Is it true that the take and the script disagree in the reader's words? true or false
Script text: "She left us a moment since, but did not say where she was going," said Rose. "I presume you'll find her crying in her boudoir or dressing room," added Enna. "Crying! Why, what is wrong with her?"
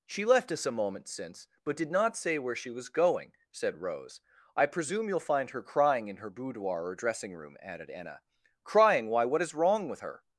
false